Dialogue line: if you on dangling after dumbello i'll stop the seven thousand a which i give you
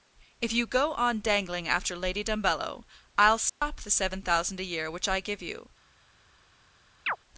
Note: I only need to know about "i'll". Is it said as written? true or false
true